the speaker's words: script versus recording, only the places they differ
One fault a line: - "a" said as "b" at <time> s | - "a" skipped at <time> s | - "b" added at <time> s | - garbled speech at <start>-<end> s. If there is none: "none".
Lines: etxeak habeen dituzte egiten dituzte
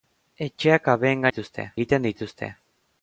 none